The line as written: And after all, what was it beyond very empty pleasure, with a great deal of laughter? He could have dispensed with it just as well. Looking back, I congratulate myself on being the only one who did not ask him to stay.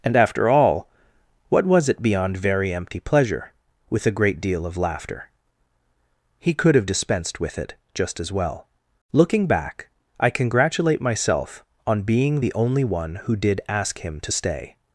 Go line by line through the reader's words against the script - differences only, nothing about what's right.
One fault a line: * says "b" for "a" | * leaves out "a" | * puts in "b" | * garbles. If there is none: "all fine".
* leaves out "not"